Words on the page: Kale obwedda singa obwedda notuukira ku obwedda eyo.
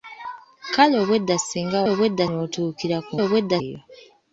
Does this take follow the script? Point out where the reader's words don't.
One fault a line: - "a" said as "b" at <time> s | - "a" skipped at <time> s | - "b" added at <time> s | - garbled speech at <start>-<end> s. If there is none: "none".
none